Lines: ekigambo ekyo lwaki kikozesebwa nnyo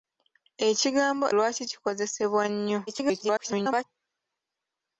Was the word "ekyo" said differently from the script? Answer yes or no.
yes